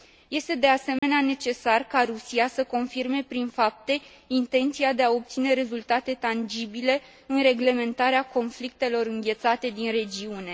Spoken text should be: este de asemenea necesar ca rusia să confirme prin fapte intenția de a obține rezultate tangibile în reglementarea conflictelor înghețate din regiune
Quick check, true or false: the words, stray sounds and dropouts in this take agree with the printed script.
false